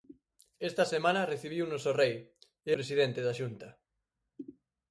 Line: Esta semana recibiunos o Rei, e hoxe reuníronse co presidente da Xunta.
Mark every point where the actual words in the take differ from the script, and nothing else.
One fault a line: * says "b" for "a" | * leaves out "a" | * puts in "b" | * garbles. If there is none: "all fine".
* leaves out "hoxe reuníronse co"